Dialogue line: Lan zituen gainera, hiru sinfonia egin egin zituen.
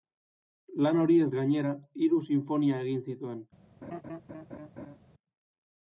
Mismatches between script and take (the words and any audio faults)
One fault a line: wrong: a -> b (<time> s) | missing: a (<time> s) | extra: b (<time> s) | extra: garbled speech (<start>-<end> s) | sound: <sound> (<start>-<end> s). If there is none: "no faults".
wrong: zituen -> horiez (1.0 s)
missing: egin (3.0 s)
sound: laugh (3.8-5.0 s)